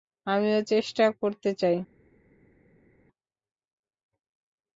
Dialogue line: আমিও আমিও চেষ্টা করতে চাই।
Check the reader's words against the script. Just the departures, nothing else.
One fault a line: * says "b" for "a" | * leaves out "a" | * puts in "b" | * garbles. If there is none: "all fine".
* leaves out "আমিও"